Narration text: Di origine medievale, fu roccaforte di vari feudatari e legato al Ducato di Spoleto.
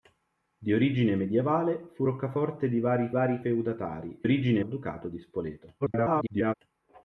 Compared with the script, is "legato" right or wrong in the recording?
wrong